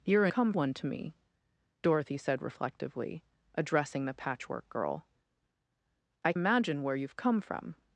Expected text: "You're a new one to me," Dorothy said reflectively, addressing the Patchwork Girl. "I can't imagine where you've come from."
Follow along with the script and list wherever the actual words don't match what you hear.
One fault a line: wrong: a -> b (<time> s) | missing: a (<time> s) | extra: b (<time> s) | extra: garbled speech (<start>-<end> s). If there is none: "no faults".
wrong: new -> come (0.3 s)
missing: can't (6.3 s)